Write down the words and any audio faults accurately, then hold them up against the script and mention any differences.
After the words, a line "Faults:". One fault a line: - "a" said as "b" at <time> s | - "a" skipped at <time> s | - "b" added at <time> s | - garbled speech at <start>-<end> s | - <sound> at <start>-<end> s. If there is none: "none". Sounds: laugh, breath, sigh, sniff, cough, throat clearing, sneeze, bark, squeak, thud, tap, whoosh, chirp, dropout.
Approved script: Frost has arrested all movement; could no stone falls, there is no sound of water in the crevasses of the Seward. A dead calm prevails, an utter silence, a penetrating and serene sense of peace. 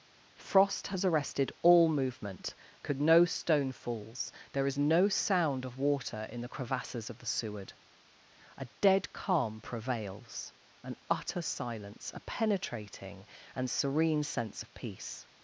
Frost has arrested all movement; could no stone falls, there is no sound of water in the crevasses of the Seward. A dead calm prevails, an utter silence, a penetrating and serene sense of peace.
Faults:
none